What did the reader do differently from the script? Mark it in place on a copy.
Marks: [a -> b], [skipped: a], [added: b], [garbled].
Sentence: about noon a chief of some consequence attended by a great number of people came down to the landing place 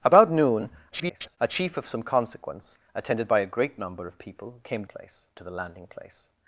about noon [garbled] a chief of some consequence attended by a great number of people came [down -> place] to the landing place